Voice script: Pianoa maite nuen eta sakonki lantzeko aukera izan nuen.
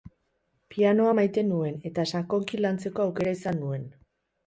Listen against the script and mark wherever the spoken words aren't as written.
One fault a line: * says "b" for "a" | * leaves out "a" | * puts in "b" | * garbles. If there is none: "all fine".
all fine